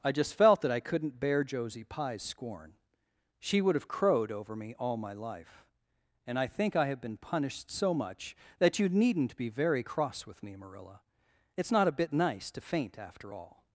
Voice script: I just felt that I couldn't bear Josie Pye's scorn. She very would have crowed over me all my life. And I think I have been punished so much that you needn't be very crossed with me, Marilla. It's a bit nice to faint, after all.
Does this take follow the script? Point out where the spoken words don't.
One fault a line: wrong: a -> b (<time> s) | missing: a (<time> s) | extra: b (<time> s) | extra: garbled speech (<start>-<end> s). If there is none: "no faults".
missing: very (3.6 s)
wrong: crossed -> cross (9.8 s)
extra: not (11.7 s)